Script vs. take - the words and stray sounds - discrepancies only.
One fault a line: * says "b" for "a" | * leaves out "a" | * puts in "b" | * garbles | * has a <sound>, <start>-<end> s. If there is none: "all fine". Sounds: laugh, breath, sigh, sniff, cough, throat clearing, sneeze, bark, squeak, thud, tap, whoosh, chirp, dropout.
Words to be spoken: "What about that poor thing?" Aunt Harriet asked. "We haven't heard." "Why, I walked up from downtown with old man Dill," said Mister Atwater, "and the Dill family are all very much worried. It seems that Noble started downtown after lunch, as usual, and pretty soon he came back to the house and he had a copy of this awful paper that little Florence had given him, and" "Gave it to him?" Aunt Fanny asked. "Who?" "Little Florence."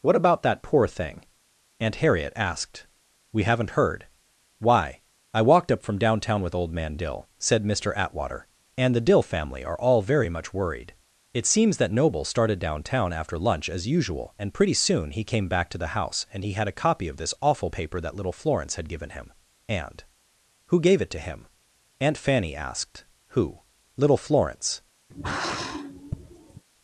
* puts in "Who"
* has a sigh, 25.1-26.6 s